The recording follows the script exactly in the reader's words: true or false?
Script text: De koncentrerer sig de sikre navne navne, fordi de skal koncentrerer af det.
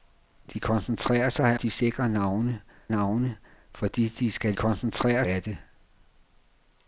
true